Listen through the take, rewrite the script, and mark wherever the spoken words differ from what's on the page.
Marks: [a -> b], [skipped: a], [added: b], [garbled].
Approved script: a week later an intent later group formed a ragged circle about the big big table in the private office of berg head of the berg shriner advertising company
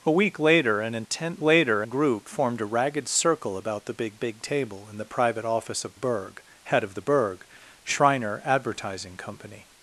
a week later an intent later group formed a ragged circle about the big big table in the private office of berg head of the berg shriner advertising company